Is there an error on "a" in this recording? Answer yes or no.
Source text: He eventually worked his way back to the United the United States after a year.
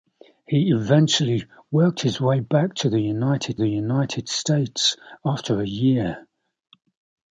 no